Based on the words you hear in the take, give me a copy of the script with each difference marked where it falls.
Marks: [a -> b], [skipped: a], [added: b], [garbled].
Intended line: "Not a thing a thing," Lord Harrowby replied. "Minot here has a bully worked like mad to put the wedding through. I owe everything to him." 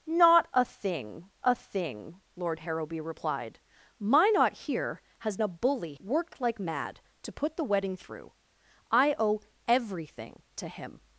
"Not a thing a thing," Lord Harrowby replied. "Minot here has a bully worked like mad to put the wedding through. I owe everything to him."